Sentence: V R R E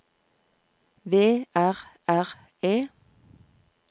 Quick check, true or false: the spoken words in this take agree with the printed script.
true